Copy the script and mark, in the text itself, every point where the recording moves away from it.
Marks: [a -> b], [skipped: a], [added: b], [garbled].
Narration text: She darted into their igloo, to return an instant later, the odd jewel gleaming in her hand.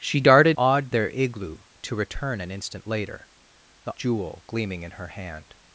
She darted [into -> odd] their igloo, to return an instant later, the [skipped: odd] jewel gleaming in her hand.